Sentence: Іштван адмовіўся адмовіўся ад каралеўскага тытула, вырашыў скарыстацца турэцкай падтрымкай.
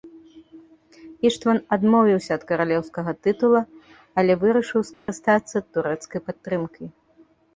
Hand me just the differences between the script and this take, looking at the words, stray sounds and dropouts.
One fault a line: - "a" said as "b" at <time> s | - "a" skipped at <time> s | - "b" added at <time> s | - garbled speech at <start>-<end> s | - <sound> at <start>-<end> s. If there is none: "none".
- "адмовіўся" skipped at 2.3 s
- "але" added at 4.2 s
- dropout at 4.9-5.1 s